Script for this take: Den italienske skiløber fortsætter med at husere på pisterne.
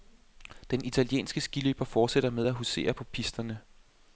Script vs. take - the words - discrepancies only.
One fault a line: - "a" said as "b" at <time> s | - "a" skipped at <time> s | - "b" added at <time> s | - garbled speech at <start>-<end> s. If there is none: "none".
none